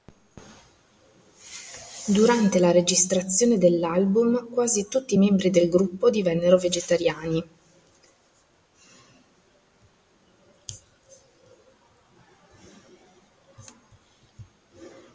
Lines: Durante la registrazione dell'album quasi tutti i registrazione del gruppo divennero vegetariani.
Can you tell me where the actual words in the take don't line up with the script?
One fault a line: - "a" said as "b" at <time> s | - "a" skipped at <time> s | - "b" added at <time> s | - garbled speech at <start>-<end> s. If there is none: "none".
- "registrazione" said as "membri" at 5.2 s